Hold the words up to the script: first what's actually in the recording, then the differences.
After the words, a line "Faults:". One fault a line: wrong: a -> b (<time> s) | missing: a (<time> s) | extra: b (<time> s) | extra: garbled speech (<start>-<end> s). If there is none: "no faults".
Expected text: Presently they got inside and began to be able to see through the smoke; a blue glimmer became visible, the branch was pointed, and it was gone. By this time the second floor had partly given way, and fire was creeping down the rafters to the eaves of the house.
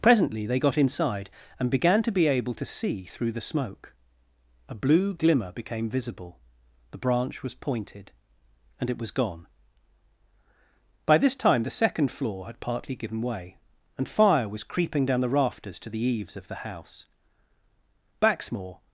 Presently they got inside and began to be able to see through the smoke; a blue glimmer became visible, the branch was pointed, and it was gone. By this time the second floor had partly given way, and fire was creeping down the rafters to the eaves of the house. Baxmore
Faults:
extra: Baxmore (18.2 s)